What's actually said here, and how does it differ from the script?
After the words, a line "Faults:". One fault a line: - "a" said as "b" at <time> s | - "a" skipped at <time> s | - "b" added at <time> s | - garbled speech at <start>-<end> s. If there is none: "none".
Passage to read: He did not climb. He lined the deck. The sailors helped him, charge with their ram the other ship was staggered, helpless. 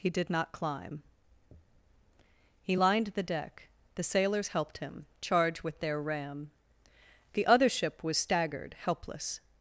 He did not climb. He lined the deck. The sailors helped him, charge with their ram the other ship was staggered, helpless.
Faults:
none